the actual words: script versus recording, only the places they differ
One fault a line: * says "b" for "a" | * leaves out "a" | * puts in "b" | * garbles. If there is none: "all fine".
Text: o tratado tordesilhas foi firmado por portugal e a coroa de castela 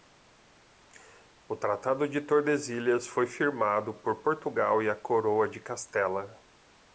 * puts in "de"